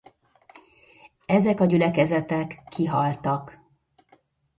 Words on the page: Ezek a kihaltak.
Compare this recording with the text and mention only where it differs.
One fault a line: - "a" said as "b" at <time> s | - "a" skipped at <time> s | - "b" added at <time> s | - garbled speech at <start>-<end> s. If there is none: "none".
- "gyülekezetek" added at 1.6 s